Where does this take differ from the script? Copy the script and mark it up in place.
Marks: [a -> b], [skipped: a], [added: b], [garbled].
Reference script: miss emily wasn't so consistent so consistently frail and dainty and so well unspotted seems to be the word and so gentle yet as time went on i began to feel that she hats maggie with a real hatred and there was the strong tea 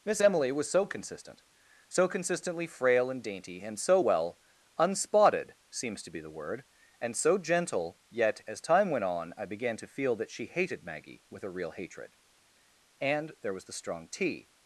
miss emily [wasn't -> was] so consistent so consistently frail and dainty and so well unspotted seems to be the word and so gentle yet as time went on i began to feel that she [hats -> hated] maggie with a real hatred and there was the strong tea